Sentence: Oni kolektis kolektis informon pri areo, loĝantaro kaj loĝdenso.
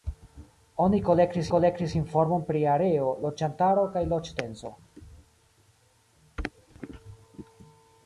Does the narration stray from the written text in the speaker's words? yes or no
no